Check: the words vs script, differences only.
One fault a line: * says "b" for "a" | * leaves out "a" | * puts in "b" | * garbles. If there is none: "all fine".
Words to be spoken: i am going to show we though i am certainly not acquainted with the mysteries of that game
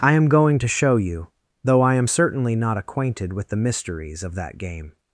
* says "you" for "we"